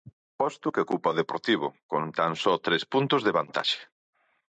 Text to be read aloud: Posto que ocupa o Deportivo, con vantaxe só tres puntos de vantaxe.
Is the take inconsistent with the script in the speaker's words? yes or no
yes